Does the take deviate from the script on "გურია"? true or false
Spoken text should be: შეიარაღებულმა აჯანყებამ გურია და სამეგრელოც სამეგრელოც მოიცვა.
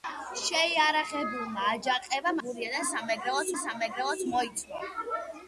false